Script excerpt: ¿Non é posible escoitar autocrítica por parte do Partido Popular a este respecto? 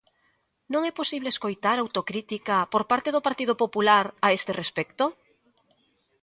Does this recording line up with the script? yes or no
yes